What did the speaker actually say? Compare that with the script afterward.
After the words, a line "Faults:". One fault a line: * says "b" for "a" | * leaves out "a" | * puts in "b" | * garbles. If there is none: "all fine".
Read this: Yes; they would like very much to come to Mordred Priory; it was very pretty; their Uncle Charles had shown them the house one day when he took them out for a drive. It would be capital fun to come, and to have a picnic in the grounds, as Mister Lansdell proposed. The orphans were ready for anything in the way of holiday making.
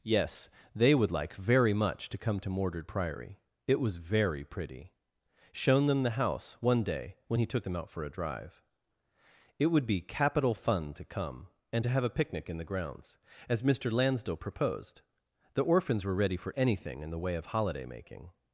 Yes; they would like very much to come to Mordred Priory; it was very pretty; shown them the house one day when he took them out for a drive. It would be capital fun to come, and to have a picnic in the grounds, as Mister Lansdell proposed. The orphans were ready for anything in the way of holiday making.
Faults:
* leaves out "their Uncle Charles had"